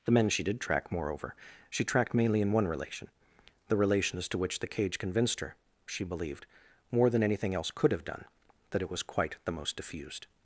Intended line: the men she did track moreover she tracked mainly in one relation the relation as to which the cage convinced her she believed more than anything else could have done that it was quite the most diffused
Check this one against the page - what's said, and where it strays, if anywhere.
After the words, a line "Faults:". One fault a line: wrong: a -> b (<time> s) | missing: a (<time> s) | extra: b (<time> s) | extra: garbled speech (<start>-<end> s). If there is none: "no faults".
the men she did track moreover she tracked mainly in one relation the relation as to which the cage convinced her she believed more than anything else could have done that it was quite the most diffused
Faults:
no faults